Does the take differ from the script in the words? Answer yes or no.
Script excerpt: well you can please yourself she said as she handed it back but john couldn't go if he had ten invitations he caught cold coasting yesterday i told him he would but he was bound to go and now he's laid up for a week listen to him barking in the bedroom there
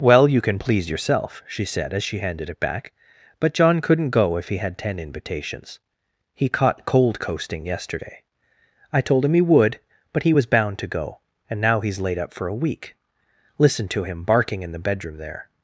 no